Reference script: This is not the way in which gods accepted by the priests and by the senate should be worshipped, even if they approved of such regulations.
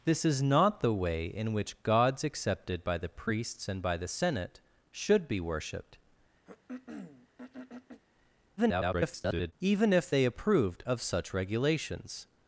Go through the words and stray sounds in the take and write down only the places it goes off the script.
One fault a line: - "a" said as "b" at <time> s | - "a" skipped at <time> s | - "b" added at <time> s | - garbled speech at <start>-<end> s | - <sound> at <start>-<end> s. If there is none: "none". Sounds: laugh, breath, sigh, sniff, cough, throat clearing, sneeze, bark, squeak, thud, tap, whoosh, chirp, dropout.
- throat clearing at 6.5-8.0 s
- garbled speech at 8.6-9.5 s